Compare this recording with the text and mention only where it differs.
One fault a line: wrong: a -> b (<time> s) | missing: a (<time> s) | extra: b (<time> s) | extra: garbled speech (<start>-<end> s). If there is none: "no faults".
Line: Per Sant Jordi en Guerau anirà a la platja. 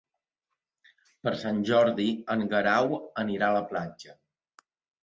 no faults